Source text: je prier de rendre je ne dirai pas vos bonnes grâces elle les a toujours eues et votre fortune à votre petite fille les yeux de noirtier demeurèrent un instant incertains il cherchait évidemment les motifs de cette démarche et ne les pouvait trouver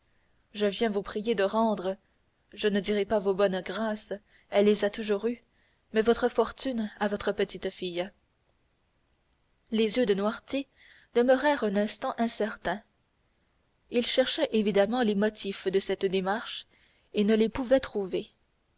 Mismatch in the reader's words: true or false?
true